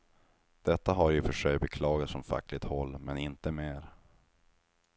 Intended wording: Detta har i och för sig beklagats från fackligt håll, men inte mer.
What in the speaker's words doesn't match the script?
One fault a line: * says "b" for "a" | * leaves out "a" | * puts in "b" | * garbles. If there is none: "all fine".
all fine